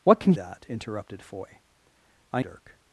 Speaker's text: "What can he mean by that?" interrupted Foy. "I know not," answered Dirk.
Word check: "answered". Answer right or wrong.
wrong